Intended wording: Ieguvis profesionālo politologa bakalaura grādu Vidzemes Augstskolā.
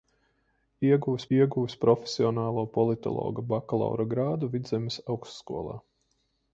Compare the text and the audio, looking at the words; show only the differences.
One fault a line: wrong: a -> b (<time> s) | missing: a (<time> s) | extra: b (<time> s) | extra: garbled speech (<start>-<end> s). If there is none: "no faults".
extra: ieguvis (1.3 s)